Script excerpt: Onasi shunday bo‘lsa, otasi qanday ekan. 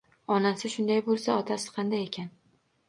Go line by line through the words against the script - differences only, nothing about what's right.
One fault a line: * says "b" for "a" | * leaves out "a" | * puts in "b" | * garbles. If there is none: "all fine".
all fine